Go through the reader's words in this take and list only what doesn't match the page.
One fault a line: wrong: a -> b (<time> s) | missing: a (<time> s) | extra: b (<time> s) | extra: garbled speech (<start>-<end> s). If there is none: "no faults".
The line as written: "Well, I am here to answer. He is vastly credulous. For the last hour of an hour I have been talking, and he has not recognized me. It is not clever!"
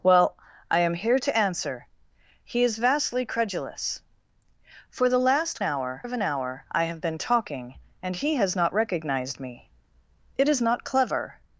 no faults